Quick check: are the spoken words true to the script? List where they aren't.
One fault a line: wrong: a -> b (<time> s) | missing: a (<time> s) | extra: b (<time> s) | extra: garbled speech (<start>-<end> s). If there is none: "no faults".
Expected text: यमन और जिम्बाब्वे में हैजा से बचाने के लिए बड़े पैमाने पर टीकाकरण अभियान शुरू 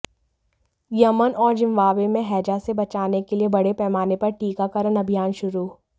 no faults